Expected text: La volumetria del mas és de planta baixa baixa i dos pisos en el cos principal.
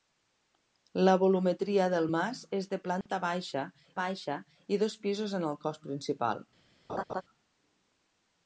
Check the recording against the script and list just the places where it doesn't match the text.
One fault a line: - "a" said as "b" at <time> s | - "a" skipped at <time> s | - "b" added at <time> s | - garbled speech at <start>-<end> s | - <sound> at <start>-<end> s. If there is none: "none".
- dropout at 3.0-3.1 s
- laugh at 6.9-7.2 s